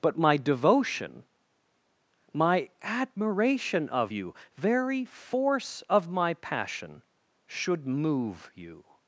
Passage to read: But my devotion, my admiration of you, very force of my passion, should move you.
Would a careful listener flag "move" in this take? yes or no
no